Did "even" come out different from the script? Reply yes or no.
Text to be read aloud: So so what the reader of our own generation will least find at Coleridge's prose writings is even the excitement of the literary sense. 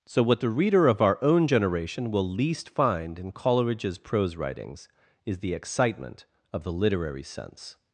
yes